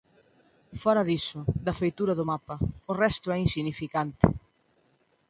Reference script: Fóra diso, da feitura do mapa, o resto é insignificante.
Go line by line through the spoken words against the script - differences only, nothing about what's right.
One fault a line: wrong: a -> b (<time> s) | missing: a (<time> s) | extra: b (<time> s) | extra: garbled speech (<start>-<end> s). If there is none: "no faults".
no faults